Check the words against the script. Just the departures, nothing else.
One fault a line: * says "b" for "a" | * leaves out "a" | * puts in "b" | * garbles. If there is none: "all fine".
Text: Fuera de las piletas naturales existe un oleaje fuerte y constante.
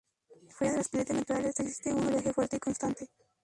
all fine